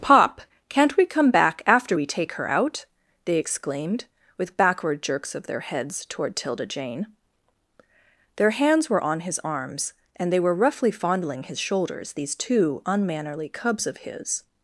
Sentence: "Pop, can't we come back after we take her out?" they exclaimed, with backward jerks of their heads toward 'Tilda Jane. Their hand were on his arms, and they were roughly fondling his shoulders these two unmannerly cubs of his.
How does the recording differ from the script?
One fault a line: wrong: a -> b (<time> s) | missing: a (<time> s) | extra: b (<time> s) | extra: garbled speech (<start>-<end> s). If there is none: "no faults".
wrong: hand -> hands (8.5 s)